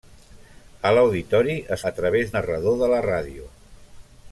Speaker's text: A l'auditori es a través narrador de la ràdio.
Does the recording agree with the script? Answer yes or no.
yes